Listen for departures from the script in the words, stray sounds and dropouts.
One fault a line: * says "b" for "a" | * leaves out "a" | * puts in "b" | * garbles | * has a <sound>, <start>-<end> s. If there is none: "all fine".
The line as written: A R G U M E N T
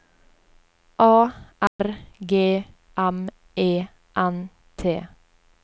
* has a dropout, 1.7-1.8 s
* leaves out "U"